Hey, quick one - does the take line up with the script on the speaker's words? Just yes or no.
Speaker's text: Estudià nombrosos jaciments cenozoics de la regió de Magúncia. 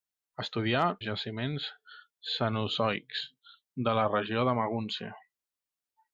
no